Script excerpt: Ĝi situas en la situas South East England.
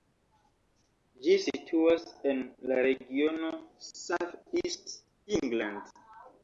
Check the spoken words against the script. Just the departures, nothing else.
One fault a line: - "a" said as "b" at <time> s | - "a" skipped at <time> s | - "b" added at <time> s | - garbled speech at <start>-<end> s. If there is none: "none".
- "situas" said as "regiono" at 2.9 s